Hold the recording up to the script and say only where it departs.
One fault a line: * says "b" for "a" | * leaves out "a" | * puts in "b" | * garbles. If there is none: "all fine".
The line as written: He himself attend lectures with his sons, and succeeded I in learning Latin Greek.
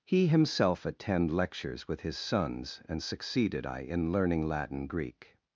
all fine